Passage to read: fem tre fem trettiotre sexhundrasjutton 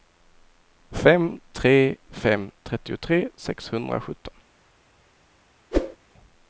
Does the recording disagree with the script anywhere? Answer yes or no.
no